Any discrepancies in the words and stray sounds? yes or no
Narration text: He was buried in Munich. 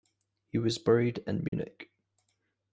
yes